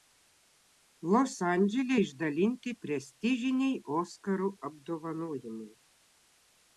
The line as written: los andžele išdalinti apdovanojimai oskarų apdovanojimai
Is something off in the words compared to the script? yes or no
yes